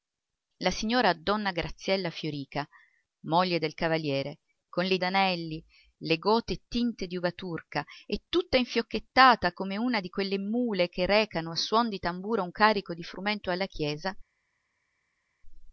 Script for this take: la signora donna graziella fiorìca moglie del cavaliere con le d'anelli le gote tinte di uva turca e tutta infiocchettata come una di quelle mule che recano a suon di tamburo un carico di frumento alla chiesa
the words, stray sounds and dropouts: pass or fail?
pass